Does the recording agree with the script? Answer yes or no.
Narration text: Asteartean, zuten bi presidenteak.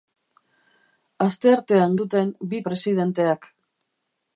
yes